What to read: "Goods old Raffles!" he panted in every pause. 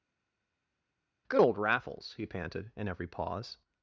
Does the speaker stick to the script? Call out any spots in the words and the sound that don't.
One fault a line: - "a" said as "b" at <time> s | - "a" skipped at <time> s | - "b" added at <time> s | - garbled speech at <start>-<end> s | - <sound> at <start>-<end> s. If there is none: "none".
- "Goods" said as "Good" at 1.3 s